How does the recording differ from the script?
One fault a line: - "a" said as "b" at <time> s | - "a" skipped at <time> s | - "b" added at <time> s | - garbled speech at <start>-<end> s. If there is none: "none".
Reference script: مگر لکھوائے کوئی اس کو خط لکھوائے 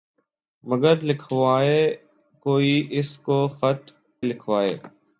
none